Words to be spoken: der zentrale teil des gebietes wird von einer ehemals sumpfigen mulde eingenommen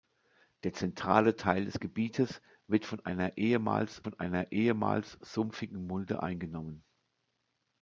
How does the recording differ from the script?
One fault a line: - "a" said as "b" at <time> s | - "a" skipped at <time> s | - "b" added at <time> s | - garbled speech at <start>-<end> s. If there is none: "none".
- "von einer ehemals" added at 4.0 s